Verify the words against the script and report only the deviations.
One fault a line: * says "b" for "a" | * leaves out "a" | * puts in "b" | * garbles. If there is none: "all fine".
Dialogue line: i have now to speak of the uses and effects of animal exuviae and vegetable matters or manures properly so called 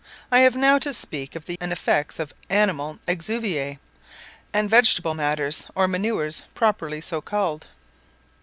* leaves out "uses"